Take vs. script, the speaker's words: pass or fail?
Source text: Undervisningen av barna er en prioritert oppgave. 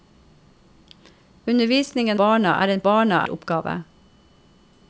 fail